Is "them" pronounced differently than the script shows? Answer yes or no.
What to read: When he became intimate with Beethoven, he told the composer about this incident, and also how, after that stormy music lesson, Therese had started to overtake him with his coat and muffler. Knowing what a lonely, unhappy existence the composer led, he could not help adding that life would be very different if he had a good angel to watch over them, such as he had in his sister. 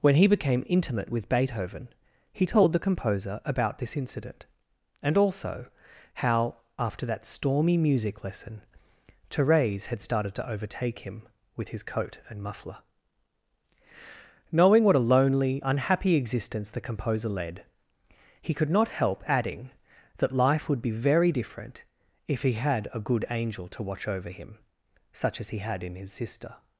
yes